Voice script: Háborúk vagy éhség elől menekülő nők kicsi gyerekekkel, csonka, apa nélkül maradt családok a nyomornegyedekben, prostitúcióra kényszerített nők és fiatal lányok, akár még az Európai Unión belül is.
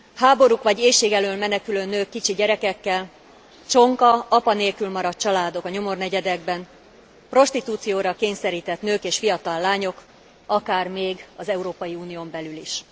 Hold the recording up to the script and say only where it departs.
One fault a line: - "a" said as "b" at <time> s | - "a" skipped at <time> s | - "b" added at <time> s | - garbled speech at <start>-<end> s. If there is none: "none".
none